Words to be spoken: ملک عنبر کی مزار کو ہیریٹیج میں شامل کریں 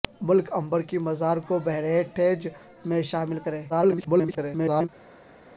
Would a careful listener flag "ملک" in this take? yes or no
no